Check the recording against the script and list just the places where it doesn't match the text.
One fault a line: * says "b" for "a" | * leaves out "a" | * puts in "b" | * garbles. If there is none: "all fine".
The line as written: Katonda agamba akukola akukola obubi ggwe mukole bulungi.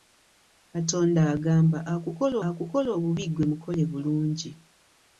all fine